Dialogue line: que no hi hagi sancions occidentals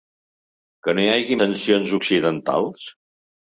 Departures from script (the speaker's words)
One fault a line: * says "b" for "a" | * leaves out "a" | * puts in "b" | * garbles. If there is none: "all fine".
all fine